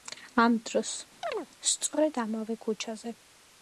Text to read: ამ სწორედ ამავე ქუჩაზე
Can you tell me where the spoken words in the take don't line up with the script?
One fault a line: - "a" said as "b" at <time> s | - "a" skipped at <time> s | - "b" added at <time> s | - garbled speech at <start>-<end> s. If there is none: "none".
- "დროს" added at 0.7 s